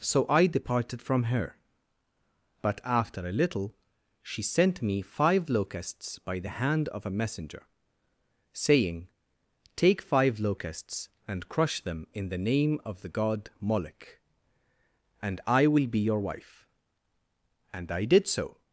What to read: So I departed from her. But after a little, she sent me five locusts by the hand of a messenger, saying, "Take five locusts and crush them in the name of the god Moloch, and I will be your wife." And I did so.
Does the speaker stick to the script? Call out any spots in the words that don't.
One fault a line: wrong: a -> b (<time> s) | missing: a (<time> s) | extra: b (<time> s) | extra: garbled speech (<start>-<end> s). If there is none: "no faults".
no faults